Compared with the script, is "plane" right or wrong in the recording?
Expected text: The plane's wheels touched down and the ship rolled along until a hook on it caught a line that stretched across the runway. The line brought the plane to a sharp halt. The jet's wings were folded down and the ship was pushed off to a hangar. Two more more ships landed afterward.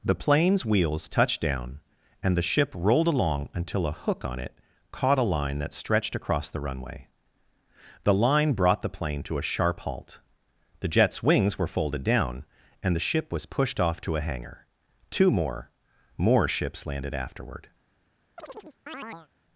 right